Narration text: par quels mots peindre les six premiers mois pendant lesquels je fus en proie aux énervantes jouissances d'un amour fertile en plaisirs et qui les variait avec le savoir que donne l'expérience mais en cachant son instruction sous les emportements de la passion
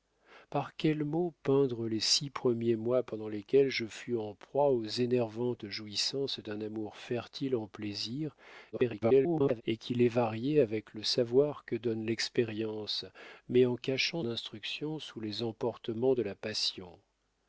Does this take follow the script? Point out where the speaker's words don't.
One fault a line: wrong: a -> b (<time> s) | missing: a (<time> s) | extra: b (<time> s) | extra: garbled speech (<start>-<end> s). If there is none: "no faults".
extra: garbled speech (8.7-9.6 s)
missing: son (14.2 s)